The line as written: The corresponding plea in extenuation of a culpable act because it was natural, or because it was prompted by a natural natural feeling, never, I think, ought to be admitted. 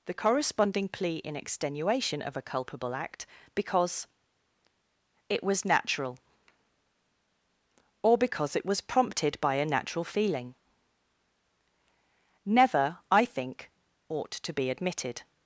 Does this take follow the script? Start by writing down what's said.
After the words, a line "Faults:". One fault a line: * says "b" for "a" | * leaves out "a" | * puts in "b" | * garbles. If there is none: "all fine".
The corresponding plea in extenuation of a culpable act because it was natural, or because it was prompted by a natural feeling, never, I think, ought to be admitted.
Faults:
* leaves out "natural"